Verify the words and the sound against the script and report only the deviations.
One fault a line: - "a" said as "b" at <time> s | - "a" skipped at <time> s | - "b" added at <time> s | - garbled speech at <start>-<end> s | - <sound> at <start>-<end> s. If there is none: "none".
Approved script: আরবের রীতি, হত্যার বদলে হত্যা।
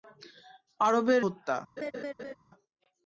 - "রীতি হত্যার বদলে" skipped at 1.2 s
- laugh at 1.8-2.3 s